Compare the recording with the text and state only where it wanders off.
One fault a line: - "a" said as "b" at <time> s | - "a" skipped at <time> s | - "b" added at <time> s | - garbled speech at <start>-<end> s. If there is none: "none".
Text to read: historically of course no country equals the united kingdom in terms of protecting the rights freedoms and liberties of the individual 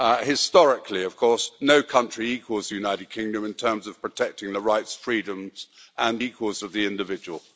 - "liberties" said as "equals" at 6.2 s